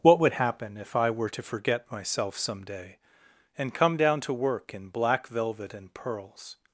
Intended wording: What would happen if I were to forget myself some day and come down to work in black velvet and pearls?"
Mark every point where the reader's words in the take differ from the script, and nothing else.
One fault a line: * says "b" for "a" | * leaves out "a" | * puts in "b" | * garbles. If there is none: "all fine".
all fine